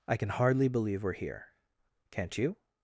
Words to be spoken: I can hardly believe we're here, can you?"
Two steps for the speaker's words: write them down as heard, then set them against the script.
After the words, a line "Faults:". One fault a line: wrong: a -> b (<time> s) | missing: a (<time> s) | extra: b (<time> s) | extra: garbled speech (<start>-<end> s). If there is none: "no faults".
I can hardly believe we're here, can't you?"
Faults:
wrong: can -> can't (2.1 s)